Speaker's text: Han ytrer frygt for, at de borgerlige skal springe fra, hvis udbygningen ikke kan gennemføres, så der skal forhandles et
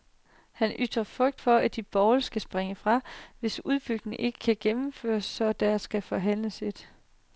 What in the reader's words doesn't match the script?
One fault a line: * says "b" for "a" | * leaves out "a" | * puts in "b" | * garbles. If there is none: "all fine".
all fine